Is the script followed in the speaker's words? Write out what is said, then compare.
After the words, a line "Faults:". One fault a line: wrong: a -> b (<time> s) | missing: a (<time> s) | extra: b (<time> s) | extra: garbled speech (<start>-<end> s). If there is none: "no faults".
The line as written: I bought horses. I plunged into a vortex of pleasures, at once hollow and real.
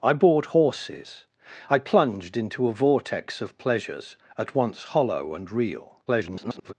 I bought horses. I plunged into a vortex of pleasures, at once hollow and real. [garbled]
Faults:
extra: garbled speech (6.1-6.7 s)